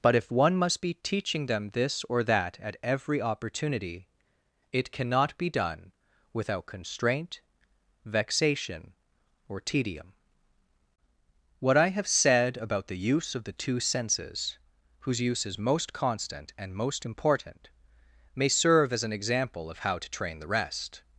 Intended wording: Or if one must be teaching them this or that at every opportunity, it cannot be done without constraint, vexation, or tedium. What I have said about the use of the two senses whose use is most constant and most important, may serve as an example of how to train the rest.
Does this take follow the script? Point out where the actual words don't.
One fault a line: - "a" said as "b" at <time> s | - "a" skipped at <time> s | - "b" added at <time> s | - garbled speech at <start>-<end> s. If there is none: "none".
- "Or" said as "But" at 0.0 s